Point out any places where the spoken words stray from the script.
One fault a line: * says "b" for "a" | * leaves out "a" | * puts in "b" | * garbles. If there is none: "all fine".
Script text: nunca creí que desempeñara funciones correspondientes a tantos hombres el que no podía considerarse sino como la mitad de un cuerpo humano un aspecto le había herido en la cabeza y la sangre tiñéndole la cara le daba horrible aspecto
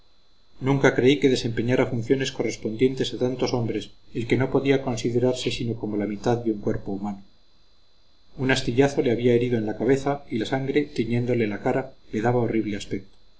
* says "astillazo" for "aspecto"